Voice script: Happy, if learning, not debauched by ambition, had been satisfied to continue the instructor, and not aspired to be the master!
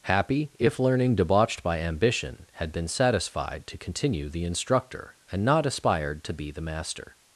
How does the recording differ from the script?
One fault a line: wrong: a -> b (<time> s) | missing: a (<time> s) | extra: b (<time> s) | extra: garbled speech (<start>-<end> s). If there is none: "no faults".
missing: not (1.1 s)